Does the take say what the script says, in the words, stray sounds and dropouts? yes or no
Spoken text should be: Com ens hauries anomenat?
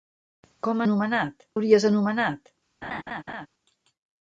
no